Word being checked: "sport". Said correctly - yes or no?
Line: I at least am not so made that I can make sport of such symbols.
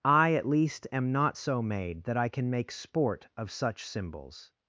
yes